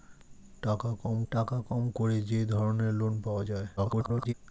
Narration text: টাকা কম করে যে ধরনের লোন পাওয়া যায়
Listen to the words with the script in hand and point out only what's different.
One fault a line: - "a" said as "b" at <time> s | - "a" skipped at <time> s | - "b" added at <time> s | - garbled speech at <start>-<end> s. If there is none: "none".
- "টাকা কম" added at 1.3 s
- garbled speech at 3.8-4.3 s